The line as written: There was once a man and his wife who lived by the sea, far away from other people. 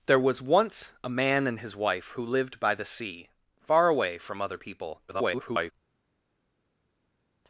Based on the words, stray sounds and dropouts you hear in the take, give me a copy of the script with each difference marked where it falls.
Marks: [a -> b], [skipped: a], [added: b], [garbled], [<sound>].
There was once a man and his wife who lived by the sea, far away from other people. [garbled]